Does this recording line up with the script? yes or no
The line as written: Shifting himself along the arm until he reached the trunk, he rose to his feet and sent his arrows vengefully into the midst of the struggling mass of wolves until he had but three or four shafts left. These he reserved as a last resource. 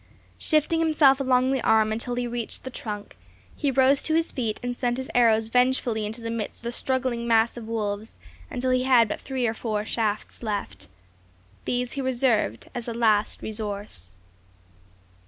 no